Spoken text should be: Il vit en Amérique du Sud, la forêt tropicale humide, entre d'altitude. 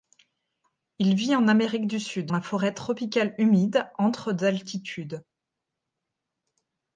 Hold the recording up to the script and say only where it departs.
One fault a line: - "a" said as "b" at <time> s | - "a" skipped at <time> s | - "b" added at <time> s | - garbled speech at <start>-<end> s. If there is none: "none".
none